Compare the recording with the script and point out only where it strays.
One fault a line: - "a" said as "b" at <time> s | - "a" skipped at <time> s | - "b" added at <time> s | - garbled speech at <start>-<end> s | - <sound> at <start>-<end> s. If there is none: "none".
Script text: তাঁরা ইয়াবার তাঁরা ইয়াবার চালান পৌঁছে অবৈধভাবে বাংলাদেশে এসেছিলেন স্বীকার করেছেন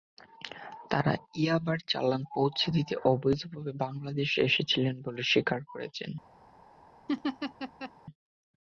- "তাঁরা ইয়াবার" skipped at 1.8 s
- "দিতে" added at 2.8 s
- "বলে" added at 5.1 s
- laugh at 7.1-7.9 s